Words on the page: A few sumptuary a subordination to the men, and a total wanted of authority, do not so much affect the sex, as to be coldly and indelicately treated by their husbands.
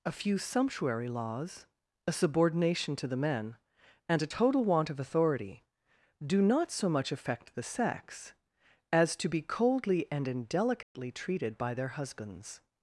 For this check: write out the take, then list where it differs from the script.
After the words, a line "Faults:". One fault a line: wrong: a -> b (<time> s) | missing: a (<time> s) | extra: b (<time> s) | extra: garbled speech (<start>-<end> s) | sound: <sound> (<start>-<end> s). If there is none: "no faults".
A few sumptuary laws, a subordination to the men, and a total want of authority, do not so much affect the sex, as to be coldly and indelicately treated by their husbands.
Faults:
extra: laws (1.1 s)
wrong: wanted -> want (4.6 s)
sound: dropout (10.8-10.9 s)